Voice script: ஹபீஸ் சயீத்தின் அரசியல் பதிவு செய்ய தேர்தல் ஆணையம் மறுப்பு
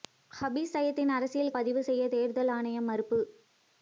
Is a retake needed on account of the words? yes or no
no